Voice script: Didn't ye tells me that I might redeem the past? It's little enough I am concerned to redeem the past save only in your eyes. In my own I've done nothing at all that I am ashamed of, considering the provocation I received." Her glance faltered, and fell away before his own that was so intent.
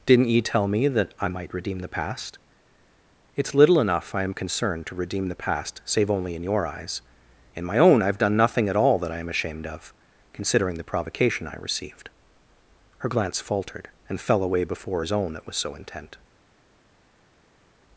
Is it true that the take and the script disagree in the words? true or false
true